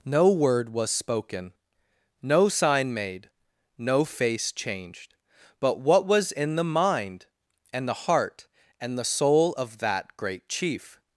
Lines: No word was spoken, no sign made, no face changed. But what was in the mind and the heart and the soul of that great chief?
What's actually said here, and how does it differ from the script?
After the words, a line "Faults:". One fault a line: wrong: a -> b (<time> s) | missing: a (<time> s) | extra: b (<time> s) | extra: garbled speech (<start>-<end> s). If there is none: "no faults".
No word was spoken, no sign made, no face changed. But what was in the mind and the heart and the soul of that great chief?
Faults:
no faults